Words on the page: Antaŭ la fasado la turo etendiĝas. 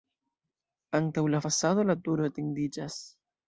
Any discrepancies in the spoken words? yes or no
no